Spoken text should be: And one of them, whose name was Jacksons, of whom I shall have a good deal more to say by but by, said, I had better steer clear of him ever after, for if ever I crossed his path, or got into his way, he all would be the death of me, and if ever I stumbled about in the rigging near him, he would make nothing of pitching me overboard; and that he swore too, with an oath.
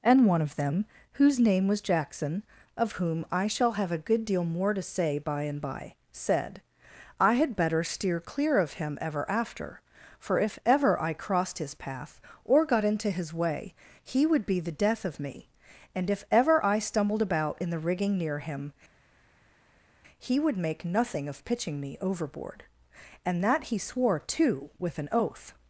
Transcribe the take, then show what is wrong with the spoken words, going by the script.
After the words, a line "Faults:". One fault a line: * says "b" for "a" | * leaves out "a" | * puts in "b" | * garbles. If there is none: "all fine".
And one of them, whose name was Jackson, of whom I shall have a good deal more to say by and by, said, I had better steer clear of him ever after, for if ever I crossed his path, or got into his way, he would be the death of me, and if ever I stumbled about in the rigging near him, he would make nothing of pitching me overboard; and that he swore too, with an oath.
Faults:
* says "Jackson" for "Jacksons"
* says "and" for "but"
* leaves out "all"